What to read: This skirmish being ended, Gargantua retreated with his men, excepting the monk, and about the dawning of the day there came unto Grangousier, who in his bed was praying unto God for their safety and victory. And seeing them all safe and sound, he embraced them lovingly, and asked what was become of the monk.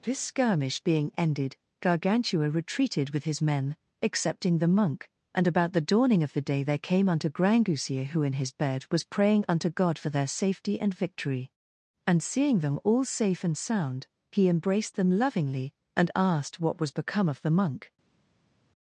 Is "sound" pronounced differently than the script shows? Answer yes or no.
no